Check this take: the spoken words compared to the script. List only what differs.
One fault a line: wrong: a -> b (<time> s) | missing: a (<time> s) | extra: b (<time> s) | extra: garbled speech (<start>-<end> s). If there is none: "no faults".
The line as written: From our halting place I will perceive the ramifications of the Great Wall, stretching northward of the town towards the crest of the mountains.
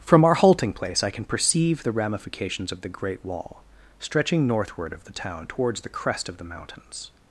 wrong: will -> can (1.1 s)